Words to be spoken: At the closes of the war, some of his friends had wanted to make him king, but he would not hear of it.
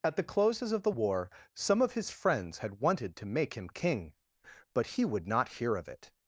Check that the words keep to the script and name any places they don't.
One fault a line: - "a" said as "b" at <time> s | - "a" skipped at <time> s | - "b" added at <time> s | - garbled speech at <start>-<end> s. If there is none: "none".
none